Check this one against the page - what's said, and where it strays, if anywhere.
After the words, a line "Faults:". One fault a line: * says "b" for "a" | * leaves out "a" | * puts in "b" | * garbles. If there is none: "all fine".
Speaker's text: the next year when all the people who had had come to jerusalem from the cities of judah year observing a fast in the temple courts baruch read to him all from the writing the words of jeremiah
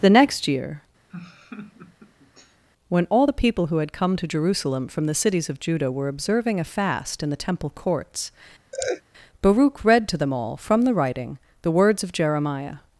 the next year when all the people who had come to jerusalem from the cities of judah were observing a fast in the temple courts baruch read to them all from the writing the words of jeremiah
Faults:
* leaves out "had"
* says "were" for "year"
* says "them" for "him"